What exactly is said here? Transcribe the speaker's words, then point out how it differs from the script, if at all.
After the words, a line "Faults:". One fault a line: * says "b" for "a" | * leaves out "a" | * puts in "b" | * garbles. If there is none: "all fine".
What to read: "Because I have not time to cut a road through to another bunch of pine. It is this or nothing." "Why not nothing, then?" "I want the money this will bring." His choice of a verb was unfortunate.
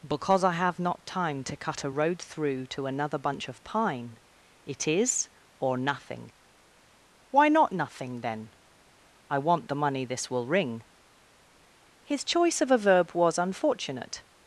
"Because I have not time to cut a road through to another bunch of pine. It is or nothing." "Why not nothing, then?" "I want the money this will ring." His choice of a verb was unfortunate.
Faults:
* leaves out "this"
* says "ring" for "bring"